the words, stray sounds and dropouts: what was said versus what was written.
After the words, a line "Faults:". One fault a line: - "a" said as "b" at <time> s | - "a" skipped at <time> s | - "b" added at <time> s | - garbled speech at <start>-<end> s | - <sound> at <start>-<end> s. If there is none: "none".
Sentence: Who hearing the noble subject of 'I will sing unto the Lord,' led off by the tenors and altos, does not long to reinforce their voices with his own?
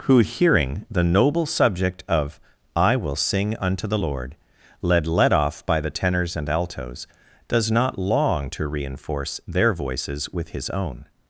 Who hearing the noble subject of 'I will sing unto the Lord,' led led off by the tenors and altos, does not long to reinforce their voices with his own?
Faults:
- "led" added at 5.1 s